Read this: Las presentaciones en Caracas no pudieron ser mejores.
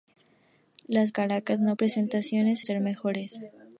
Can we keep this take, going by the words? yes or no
no